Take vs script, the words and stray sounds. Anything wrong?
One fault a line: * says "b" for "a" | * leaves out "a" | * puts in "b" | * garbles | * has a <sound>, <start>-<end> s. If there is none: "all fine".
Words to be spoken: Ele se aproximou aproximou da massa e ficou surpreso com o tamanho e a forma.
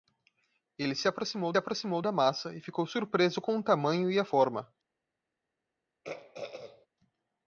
* has a throat clearing, 6.0-6.9 s